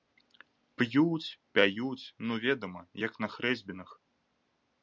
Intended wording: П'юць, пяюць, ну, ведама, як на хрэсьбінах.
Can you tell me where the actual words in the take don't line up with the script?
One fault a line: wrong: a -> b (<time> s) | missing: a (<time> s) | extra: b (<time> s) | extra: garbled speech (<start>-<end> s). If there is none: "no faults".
no faults